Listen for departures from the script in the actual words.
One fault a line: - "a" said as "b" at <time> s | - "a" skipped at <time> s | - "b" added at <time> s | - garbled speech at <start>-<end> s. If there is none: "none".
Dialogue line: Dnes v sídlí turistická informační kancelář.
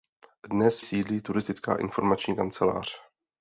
none